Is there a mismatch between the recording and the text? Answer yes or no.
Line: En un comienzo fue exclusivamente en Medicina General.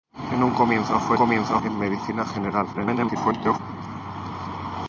yes